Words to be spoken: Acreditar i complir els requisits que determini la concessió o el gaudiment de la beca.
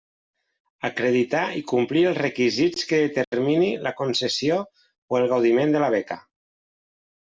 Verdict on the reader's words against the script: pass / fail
pass